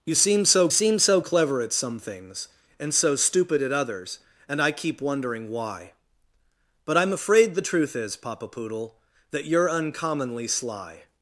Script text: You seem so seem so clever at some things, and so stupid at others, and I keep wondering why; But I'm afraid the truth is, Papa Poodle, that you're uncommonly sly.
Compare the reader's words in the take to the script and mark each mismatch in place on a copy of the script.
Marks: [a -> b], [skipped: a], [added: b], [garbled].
You seem so seem so clever at some things, and so stupid at others, and I keep wondering why; But I'm afraid the truth is, Papa Poodle, that you're uncommonly sly.